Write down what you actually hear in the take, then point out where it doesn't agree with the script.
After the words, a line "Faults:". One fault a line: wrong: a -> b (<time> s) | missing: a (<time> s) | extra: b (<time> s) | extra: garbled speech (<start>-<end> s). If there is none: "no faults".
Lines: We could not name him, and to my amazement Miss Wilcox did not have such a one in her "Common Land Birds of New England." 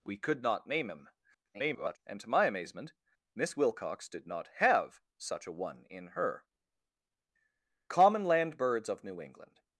We could not name him, [garbled] and to my amazement Miss Wilcox did not have such a one in her "Common Land Birds of New England."
Faults:
extra: garbled speech (1.5-2.0 s)